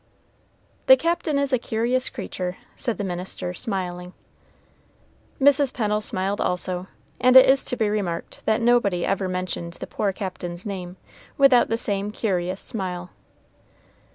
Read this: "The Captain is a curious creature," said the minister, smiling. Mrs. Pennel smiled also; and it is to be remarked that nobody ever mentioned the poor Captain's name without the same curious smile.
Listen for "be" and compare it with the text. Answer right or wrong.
right